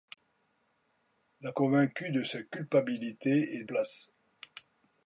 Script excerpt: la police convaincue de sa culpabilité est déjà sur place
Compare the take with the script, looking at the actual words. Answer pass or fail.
fail